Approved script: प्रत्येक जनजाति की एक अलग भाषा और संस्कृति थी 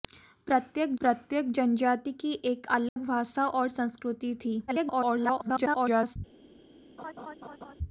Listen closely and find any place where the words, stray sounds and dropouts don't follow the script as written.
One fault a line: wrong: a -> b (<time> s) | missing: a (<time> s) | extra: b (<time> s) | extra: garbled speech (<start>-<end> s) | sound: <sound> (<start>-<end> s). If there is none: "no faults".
extra: प्रत्येक (1.0 s)
sound: dropout (2.9-3.0 s)
extra: garbled speech (4.7-6.2 s)
sound: laugh (7.0-7.7 s)